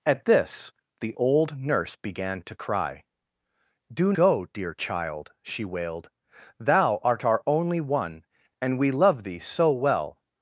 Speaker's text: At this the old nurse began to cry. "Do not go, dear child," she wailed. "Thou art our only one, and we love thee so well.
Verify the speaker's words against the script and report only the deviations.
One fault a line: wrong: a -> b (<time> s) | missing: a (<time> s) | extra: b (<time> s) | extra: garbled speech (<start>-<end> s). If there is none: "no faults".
missing: not (4.1 s)